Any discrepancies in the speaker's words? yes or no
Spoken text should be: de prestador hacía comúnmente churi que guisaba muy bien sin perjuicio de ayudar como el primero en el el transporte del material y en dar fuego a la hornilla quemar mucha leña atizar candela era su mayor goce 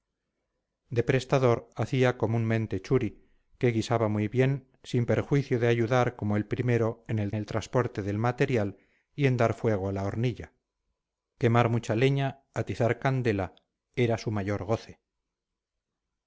no